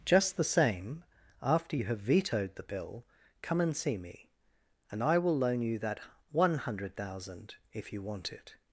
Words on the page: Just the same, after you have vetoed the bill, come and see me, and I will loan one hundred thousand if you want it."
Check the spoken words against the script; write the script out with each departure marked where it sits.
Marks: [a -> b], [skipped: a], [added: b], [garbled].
Just the same, after you have vetoed the bill, come and see me, and I will loan [added: you that] one hundred thousand if you want it."